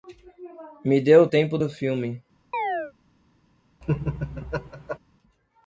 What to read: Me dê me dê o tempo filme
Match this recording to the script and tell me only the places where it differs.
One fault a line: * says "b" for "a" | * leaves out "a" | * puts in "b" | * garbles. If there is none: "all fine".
* leaves out "me dê"
* puts in "do"